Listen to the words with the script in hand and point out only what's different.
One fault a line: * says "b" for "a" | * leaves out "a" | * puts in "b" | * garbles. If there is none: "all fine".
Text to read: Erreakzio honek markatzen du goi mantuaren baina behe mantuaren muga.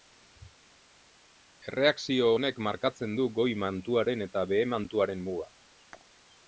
* says "eta" for "baina"